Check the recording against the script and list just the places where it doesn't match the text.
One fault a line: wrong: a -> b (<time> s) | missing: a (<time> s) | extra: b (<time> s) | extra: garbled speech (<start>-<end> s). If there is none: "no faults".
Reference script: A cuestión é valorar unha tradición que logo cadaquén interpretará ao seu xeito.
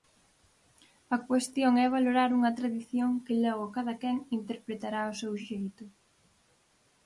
no faults